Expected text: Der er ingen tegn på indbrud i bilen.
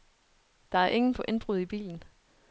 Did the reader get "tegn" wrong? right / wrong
wrong